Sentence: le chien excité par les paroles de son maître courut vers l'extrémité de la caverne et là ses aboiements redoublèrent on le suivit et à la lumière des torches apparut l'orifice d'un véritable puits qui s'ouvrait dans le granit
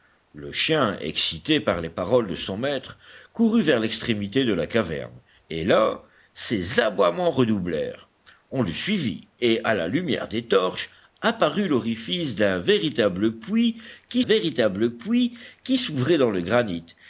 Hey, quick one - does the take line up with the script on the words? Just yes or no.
no